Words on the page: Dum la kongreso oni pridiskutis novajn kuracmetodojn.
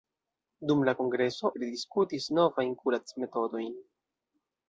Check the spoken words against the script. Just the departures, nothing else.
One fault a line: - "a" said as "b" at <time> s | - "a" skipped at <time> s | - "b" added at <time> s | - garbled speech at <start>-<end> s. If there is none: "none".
- "oni" skipped at 1.5 s